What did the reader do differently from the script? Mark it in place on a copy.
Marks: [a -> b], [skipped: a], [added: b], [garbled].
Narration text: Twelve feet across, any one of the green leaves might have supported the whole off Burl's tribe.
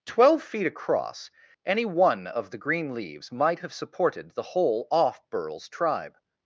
Twelve feet across, any one of the green leaves might have supported the whole off Burl's tribe.